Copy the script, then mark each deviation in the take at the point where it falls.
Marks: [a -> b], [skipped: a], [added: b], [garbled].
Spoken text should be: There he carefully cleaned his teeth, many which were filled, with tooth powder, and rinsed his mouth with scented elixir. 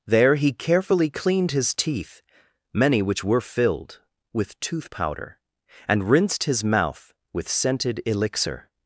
There he carefully cleaned his teeth, many which were filled, with tooth powder, and rinsed his mouth with scented elixir.